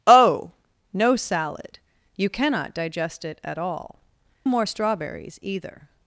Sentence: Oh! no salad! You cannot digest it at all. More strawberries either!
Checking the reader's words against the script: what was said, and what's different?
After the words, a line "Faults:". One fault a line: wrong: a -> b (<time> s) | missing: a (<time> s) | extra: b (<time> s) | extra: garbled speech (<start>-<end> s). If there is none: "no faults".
Oh! no salad! You cannot digest it at all. More strawberries either!
Faults:
no faults